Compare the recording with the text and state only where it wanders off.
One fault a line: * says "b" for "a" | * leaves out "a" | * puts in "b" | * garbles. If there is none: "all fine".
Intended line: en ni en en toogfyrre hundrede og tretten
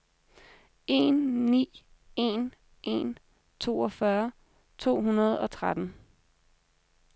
* puts in "to"